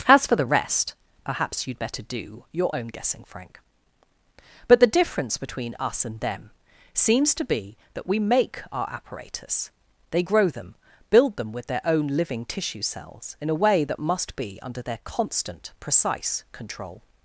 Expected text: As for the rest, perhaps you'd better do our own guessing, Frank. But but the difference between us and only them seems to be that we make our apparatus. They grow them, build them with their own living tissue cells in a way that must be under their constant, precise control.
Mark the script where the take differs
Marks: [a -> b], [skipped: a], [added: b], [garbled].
As for the rest, perhaps you'd better do [our -> your] own guessing, Frank. But [skipped: but] the difference between us and [skipped: only] them seems to be that we make our apparatus. They grow them, build them with their own living tissue cells in a way that must be under their constant, precise control.